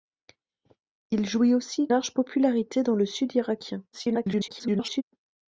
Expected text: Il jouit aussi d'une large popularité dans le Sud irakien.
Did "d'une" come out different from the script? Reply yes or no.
yes